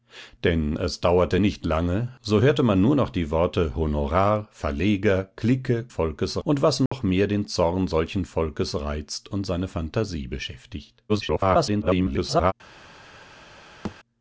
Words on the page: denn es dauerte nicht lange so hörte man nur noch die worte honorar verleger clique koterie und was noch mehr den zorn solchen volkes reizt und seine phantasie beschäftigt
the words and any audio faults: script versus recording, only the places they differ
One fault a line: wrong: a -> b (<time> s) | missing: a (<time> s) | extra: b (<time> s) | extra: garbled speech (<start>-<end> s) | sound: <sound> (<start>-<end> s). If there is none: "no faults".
wrong: koterie -> volkes (5.9 s)
sound: dropout (6.9-6.9 s)
extra: garbled speech (11.1-12.5 s)
sound: thud (13.8-14.0 s)